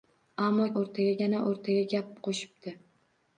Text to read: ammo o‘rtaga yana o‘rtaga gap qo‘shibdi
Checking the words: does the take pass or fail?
pass